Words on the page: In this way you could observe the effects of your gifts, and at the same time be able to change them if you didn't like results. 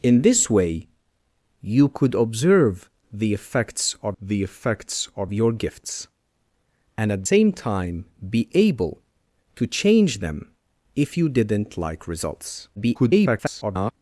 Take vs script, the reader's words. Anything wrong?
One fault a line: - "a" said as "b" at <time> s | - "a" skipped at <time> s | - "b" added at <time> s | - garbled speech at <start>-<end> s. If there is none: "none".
- "the effects of" added at 4.2 s
- "the" skipped at 7.2 s
- garbled speech at 12.8-13.9 s